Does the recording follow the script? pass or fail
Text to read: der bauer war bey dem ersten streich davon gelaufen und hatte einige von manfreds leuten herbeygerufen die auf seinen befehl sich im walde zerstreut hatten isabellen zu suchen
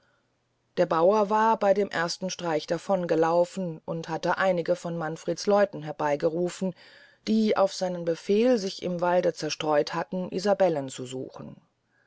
pass